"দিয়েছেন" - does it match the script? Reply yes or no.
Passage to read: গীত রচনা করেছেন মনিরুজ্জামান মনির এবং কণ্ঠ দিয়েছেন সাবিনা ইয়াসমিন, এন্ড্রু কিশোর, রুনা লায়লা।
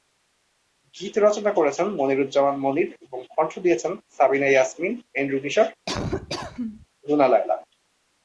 yes